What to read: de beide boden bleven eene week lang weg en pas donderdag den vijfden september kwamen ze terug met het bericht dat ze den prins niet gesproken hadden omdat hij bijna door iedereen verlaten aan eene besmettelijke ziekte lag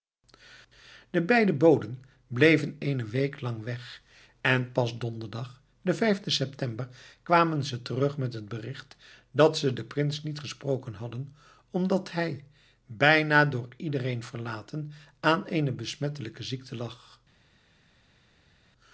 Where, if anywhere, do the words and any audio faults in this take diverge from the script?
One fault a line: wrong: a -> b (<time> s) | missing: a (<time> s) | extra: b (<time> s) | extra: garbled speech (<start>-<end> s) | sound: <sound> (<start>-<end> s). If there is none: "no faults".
no faults